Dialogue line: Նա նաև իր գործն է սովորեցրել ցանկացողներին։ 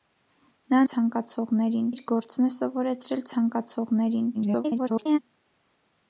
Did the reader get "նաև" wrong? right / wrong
wrong